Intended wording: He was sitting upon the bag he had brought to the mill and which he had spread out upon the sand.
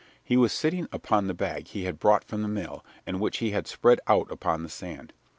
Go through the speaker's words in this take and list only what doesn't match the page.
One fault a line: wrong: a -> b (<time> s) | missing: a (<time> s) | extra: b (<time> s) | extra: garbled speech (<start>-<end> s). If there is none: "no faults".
wrong: to -> from (2.2 s)